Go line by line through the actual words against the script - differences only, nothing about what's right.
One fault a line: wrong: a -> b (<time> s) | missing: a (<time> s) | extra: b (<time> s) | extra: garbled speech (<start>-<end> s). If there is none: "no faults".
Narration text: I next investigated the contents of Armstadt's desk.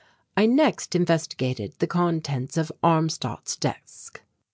no faults